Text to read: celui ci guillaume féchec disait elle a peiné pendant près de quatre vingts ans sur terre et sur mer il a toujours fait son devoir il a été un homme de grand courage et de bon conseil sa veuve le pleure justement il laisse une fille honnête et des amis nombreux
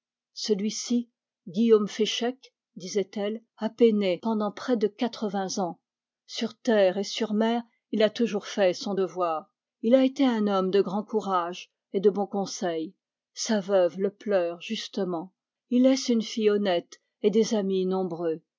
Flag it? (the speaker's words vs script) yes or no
no